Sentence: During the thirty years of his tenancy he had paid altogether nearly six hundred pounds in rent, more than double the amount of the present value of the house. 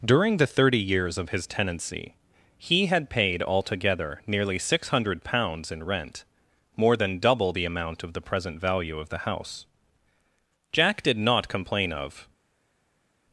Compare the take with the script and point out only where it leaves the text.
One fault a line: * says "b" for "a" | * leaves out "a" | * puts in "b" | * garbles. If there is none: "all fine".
* puts in "Jack did not complain of"